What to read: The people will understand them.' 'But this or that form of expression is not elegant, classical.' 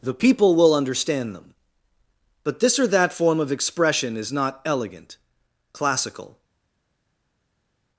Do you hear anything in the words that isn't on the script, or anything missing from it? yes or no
no